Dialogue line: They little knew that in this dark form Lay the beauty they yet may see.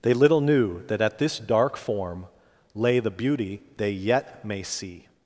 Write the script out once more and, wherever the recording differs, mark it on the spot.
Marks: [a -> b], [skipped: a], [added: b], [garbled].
They little knew that [in -> at] this dark form Lay the beauty they yet may see.